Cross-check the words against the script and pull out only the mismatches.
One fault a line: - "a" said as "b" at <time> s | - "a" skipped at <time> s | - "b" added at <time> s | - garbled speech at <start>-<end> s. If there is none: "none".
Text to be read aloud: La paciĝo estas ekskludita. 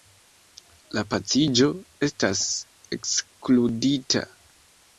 none